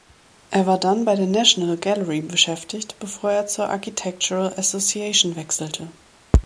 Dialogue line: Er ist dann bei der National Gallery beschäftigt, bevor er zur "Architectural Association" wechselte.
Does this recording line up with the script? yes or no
no